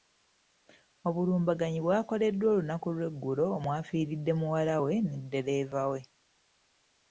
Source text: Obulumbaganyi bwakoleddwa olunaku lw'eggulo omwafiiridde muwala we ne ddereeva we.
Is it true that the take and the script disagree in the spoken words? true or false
false